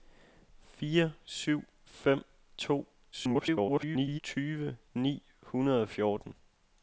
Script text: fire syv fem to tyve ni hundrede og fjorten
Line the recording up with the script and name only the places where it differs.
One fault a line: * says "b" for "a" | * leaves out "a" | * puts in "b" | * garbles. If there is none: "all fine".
* garbles